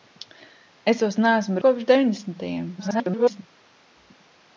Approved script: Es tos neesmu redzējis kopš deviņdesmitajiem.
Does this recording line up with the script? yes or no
no